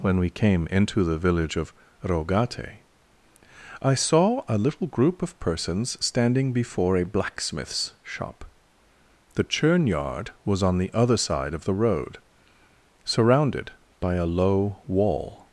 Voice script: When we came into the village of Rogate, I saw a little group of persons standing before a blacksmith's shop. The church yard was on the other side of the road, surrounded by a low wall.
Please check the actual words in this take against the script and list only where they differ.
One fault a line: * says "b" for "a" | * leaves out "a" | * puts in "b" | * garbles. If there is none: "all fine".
* says "churn" for "church"